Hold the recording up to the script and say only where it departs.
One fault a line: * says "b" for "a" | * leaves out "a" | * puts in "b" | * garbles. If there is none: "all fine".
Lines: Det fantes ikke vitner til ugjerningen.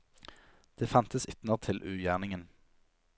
* leaves out "ikke"